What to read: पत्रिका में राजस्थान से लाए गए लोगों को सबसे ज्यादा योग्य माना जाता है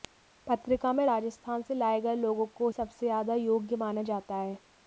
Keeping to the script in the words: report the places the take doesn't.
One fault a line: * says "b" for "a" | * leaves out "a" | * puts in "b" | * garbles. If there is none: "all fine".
all fine